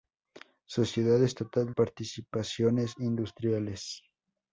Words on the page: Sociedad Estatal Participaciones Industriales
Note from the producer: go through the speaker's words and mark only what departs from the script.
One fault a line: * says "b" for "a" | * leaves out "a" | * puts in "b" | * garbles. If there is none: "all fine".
all fine